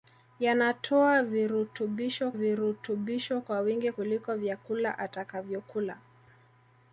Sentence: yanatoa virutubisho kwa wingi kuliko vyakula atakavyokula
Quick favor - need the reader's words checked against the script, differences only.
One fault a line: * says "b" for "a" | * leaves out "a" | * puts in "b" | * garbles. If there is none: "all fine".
* puts in "virutubisho"